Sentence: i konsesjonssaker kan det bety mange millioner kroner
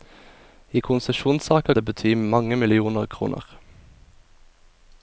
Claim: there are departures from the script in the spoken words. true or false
true